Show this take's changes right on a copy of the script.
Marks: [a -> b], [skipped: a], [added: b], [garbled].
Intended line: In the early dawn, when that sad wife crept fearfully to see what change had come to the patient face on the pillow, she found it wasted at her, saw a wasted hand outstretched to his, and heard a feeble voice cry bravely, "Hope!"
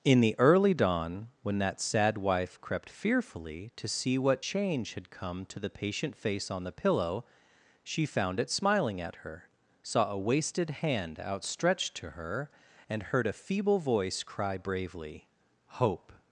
In the early dawn, when that sad wife crept fearfully to see what change had come to the patient face on the pillow, she found it [wasted -> smiling] at her, saw a wasted hand outstretched to [his, -> her] and heard a feeble voice cry bravely, "Hope!"